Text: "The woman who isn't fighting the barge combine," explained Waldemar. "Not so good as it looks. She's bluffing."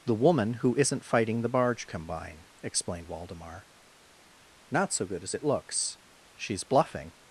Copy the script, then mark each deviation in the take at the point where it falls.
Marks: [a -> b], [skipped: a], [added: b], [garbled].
"The woman who isn't fighting the barge combine," explained Waldemar. "Not so good as it looks. She's bluffing."